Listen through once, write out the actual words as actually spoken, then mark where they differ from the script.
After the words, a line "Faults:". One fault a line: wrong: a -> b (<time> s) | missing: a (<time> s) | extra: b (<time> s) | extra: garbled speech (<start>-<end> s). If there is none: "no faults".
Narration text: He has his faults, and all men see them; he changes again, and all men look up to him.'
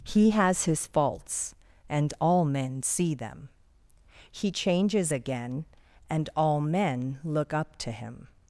He has his faults, and all men see them; he changes again, and all men look up to him.'
Faults:
no faults